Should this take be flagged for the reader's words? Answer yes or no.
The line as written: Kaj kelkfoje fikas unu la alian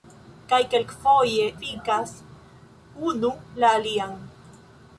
no